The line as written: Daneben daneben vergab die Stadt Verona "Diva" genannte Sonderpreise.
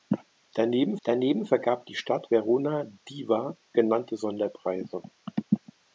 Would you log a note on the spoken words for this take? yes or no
no